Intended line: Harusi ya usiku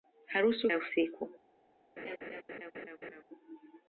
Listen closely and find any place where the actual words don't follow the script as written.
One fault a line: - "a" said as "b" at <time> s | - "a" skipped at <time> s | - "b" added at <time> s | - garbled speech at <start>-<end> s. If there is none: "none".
none